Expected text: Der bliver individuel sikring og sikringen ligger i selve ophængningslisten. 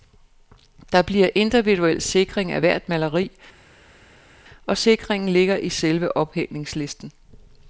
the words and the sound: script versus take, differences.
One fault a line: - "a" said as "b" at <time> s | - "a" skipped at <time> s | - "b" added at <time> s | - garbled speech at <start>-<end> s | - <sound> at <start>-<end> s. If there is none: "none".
- "af hvert maleri" added at 2.5 s